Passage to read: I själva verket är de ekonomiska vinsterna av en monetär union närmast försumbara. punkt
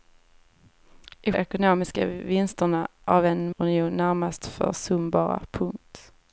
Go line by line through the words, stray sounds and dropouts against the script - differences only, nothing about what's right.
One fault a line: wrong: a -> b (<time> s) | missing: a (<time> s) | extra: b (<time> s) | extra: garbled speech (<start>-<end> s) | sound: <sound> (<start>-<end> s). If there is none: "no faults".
missing: själva verket är (1.3 s)
missing: monetär (3.5 s)